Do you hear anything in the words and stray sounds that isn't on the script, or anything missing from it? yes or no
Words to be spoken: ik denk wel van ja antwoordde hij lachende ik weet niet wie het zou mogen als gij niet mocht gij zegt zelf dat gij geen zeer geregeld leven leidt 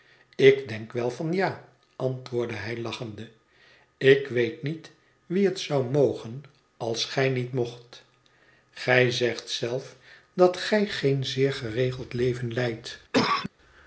yes